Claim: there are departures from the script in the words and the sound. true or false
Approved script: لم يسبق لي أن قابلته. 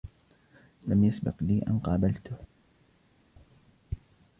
false